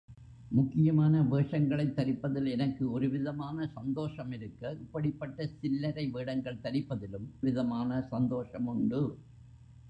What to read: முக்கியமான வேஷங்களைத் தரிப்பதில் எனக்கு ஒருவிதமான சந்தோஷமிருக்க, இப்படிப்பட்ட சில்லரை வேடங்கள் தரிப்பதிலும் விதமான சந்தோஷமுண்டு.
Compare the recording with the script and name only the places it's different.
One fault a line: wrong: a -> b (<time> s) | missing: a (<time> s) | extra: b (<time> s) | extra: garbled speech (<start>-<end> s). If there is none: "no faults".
no faults